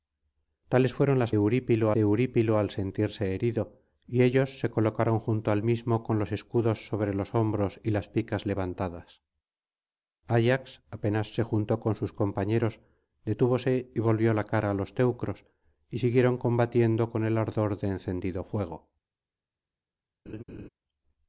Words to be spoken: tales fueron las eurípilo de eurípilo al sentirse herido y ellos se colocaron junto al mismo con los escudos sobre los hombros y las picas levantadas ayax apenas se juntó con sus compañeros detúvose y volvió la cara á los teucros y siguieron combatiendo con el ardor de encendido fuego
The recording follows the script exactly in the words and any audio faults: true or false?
false